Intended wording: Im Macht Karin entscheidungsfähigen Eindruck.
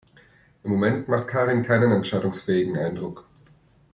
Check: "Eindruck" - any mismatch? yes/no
no